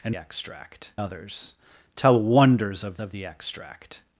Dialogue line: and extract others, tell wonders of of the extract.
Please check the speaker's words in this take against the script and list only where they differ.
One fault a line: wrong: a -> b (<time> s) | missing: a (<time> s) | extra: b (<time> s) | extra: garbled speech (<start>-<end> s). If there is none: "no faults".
no faults